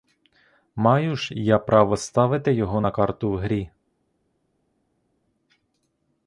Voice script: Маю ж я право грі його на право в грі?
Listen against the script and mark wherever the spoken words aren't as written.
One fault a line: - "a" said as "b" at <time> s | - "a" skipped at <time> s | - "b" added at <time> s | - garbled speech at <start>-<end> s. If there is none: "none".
- "грі" said as "ставити" at 2.0 s
- "право" said as "карту" at 2.9 s